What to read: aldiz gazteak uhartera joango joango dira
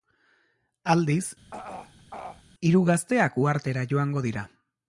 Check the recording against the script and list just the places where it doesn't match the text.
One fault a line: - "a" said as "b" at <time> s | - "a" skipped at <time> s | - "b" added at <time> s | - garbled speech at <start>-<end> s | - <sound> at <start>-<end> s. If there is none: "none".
- throat clearing at 1.5-2.4 s
- "hiru" added at 2.7 s
- "joango" skipped at 4.2 s